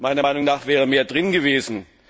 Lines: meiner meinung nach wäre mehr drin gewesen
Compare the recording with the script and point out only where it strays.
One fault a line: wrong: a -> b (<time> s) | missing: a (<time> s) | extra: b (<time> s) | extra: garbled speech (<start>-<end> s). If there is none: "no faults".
no faults